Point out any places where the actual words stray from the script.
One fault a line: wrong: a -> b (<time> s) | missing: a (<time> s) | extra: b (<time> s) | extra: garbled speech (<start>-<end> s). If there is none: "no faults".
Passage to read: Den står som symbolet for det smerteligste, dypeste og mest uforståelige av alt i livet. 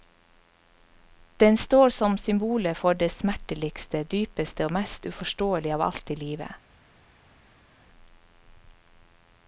no faults